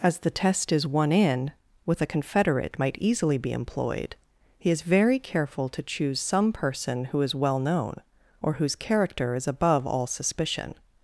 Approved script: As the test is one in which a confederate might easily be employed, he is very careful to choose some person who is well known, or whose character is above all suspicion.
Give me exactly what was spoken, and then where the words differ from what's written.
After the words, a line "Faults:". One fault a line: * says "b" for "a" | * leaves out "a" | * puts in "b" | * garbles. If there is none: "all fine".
As the test is one in with a confederate might easily be employed, he is very careful to choose some person who is well known, or whose character is above all suspicion.
Faults:
* says "with" for "which"